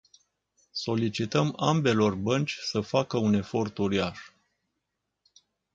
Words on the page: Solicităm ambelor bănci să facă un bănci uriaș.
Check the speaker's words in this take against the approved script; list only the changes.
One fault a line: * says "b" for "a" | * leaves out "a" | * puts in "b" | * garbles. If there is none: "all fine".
* says "efort" for "bănci"